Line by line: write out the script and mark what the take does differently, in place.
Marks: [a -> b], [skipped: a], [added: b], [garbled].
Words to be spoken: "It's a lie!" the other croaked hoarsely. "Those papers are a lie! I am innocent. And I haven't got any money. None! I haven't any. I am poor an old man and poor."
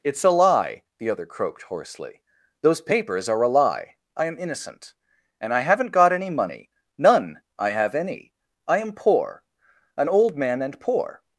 "It's a lie!" the other croaked hoarsely. "Those papers are a lie! I am innocent. And I haven't got any money. None! I [haven't -> have] any. I am poor an old man and poor."